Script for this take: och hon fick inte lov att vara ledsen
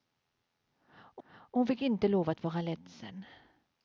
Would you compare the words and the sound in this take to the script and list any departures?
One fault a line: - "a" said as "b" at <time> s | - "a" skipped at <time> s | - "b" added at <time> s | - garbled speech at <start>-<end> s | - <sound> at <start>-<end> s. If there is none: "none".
- "och" added at 1.3 s